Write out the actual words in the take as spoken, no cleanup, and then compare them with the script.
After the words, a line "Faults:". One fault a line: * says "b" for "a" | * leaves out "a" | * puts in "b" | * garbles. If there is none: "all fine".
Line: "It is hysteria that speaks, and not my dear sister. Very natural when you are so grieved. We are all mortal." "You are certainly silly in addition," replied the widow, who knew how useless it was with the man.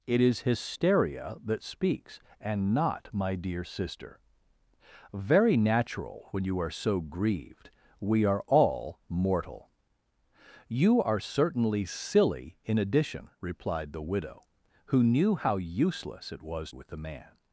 "It is hysteria that speaks, and not my dear sister. Very natural when you are so grieved. We are all mortal." "You are certainly silly in addition," replied the widow, who knew how useless it was with the man.
Faults:
all fine